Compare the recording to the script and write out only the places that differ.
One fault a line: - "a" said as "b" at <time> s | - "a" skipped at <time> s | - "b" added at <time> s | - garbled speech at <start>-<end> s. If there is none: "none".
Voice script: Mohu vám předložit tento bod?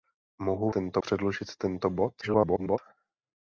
- "vám" said as "tento" at 0.7 s
- garbled speech at 2.2-2.8 s